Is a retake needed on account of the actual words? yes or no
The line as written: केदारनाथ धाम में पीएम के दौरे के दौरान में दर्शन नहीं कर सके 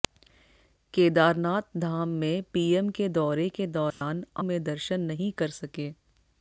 no